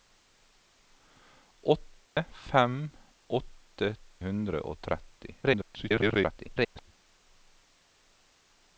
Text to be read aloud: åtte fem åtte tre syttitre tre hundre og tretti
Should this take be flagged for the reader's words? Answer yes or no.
yes